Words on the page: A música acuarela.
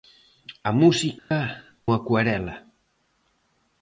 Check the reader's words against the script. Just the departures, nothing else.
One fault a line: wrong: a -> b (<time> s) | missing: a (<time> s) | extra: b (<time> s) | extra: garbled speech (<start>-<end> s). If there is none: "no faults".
no faults